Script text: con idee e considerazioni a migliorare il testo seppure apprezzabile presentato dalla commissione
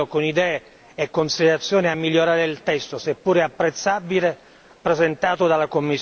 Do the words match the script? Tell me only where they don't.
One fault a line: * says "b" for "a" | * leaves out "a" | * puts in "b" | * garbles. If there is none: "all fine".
all fine